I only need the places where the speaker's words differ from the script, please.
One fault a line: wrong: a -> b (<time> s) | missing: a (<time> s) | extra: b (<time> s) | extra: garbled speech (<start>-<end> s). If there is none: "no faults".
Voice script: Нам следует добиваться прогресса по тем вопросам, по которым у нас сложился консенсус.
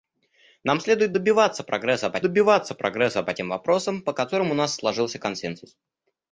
extra: добиваться прогресса по (2.2 s)